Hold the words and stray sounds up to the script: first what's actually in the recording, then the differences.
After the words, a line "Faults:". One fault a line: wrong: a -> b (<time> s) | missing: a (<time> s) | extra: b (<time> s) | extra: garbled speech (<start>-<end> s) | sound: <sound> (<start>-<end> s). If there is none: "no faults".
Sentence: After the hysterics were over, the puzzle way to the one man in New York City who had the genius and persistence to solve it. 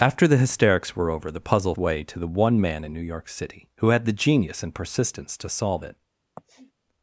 After the hysterics were over, the puzzle way to the one man in New York City who had the genius and persistence to solve it.
Faults:
sound: sniff (6.4-6.7 s)